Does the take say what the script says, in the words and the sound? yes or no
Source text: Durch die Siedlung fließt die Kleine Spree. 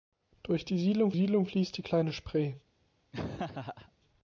no